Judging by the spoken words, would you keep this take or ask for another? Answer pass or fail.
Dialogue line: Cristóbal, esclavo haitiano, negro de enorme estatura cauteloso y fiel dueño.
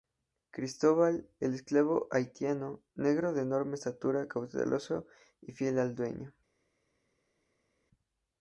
fail